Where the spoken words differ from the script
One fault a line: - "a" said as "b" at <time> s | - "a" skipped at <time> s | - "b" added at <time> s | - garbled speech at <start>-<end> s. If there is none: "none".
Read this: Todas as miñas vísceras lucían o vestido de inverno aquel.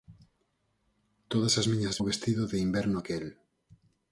- "vísceras lucían" skipped at 2.0 s